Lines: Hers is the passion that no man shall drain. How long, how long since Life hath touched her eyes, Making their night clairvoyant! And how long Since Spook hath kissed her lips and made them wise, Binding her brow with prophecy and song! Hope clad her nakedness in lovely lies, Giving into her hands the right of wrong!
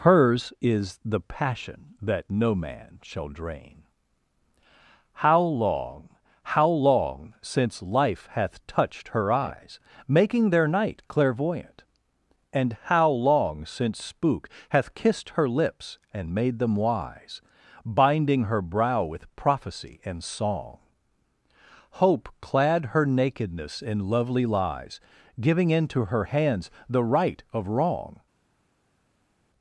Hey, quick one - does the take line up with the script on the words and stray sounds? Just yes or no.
yes